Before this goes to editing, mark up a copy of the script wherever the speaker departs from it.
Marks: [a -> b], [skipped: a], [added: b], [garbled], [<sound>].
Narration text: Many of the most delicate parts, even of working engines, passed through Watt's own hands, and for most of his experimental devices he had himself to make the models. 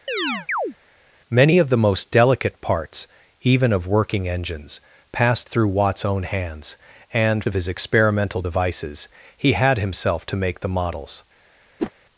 [chirp] Many of the most delicate parts, even of working engines, passed through Watt's own hands, and [skipped: for most] of his experimental devices he had himself to make the models. [whoosh]